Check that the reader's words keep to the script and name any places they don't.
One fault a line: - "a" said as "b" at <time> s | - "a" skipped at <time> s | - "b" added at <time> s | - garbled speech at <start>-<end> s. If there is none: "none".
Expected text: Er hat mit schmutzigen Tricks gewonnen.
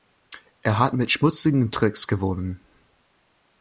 none